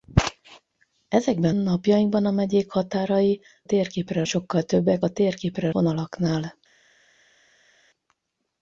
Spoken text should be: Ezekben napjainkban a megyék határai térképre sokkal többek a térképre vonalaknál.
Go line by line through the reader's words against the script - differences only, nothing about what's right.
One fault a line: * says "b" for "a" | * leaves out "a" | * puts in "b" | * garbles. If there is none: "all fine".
all fine